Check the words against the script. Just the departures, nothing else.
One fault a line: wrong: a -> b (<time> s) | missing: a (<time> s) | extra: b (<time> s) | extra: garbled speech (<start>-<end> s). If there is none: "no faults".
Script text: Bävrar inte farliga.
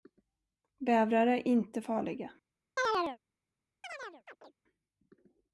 extra: är (1.3 s)